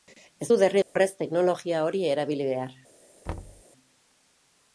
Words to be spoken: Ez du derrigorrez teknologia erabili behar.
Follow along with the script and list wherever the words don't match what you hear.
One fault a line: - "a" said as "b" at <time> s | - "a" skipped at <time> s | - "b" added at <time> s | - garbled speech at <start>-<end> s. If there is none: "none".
- "hori" added at 1.9 s